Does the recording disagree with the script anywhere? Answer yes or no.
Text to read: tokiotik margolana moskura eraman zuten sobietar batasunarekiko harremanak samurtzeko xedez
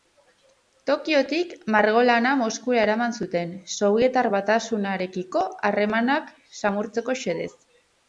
no